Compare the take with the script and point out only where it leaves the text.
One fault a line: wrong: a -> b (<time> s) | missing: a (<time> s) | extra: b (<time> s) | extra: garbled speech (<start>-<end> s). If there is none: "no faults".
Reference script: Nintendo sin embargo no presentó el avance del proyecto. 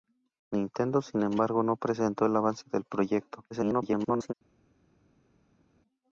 extra: garbled speech (3.5-4.3 s)